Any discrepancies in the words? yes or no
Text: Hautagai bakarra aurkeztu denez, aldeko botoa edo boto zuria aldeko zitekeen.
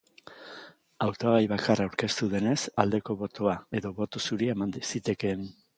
yes